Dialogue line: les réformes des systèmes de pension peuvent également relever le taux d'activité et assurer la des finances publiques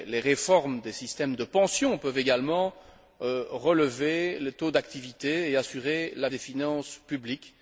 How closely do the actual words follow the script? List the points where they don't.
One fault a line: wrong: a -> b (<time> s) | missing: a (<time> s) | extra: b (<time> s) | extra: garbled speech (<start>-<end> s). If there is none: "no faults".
no faults